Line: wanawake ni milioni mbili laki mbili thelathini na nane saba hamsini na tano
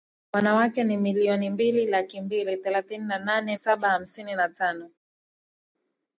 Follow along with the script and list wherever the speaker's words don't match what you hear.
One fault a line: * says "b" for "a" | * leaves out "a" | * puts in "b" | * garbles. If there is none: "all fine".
all fine